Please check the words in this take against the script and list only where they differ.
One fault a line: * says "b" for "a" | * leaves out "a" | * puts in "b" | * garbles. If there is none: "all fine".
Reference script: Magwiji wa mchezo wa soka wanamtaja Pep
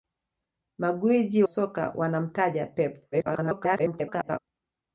* leaves out "wa mchezo wa"
* garbles